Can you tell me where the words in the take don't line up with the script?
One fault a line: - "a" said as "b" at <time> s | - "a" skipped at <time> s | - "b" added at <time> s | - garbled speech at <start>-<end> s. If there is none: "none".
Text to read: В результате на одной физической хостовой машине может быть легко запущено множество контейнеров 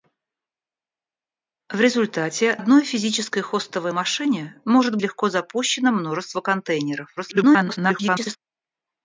- "на" skipped at 2.6 s
- "быть" skipped at 5.0 s
- garbled speech at 7.2-8.4 s